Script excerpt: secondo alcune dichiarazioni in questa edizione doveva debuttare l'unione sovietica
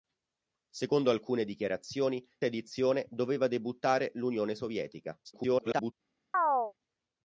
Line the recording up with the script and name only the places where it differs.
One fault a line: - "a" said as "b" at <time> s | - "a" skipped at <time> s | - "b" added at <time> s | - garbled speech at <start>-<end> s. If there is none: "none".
- "in questa" skipped at 2.3 s
- garbled speech at 5.2-5.9 s